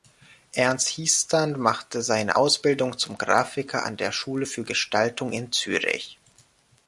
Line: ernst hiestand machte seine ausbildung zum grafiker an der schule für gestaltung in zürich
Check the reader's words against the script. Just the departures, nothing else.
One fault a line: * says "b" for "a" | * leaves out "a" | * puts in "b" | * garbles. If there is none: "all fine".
all fine